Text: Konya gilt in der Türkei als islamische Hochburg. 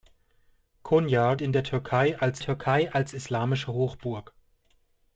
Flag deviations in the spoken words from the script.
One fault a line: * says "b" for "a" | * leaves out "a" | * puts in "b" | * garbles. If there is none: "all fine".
* leaves out "gilt"
* puts in "Türkei als"